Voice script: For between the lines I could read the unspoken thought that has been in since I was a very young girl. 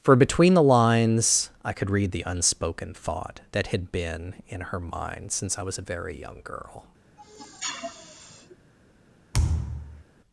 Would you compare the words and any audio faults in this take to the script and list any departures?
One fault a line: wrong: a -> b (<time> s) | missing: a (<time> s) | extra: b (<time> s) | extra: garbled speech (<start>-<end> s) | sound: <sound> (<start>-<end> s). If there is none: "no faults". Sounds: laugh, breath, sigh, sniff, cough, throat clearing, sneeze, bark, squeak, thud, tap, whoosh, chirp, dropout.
wrong: has -> had (3.7 s)
extra: her mind (4.6 s)
sound: sniff (7.2-8.6 s)
sound: thud (9.3-10.0 s)